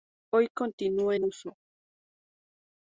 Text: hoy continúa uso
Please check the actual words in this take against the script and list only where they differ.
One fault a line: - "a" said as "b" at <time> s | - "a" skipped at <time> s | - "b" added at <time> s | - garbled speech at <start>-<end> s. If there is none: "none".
- "en" added at 1.1 s